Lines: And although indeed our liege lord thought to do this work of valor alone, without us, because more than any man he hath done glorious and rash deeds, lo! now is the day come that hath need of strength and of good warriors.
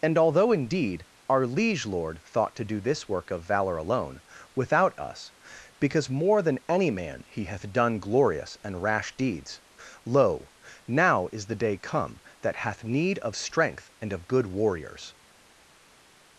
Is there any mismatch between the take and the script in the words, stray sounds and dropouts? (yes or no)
no